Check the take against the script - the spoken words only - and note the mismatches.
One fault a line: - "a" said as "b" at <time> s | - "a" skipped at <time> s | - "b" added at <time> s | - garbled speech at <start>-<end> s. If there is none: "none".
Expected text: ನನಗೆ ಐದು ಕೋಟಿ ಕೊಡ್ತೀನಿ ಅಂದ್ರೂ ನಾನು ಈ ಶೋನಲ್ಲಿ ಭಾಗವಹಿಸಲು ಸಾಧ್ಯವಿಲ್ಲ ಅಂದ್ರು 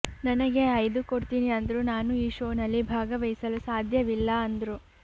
- "ಕೋಟಿ" skipped at 1.0 s